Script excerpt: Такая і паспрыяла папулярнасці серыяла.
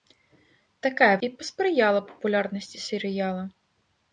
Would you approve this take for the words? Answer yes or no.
yes